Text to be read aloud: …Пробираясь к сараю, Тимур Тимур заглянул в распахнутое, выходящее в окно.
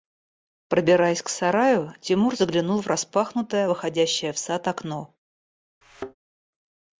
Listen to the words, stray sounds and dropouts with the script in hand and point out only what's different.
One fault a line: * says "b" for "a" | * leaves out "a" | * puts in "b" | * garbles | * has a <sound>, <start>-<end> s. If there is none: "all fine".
* leaves out "Тимур"
* puts in "сад"
* has a thud, 5.8-6.2 s